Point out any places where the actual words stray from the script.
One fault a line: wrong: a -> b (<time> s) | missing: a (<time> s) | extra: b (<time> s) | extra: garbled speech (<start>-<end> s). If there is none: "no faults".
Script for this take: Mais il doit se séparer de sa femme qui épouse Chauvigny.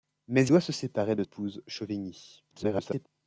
missing: il (0.5 s)
missing: sa femme qui (1.2 s)
extra: garbled speech (2.5-3.1 s)